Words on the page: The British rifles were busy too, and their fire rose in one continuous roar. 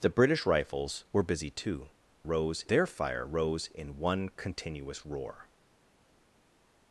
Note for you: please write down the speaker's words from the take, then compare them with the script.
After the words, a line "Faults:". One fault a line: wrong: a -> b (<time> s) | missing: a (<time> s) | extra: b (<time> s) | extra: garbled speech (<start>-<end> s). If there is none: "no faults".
The British rifles were busy too, rose their fire rose in one continuous roar.
Faults:
wrong: and -> rose (2.2 s)